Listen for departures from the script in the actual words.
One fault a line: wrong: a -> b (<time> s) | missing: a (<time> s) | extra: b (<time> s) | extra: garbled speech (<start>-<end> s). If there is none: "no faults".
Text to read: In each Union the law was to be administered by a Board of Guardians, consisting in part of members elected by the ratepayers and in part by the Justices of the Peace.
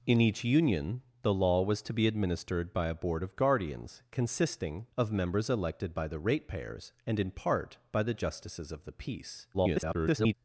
missing: in part (4.9 s)
extra: garbled speech (9.5-10.3 s)